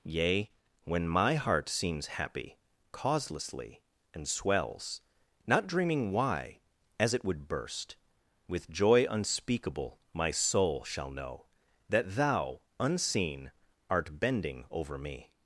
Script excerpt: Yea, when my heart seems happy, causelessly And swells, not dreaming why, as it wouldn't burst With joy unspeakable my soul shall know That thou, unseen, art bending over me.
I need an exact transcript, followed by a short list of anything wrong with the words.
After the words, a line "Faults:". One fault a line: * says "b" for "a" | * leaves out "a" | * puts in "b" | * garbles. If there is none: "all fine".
Yea, when my heart seems happy, causelessly And swells, not dreaming why, as it would burst With joy unspeakable my soul shall know That thou, unseen, art bending over me.
Faults:
* says "would" for "wouldn't"